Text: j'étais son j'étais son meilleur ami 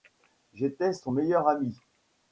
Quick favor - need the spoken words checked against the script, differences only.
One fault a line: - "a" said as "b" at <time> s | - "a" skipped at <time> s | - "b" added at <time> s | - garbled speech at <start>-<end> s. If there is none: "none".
- "j'étais son" skipped at 1.1 s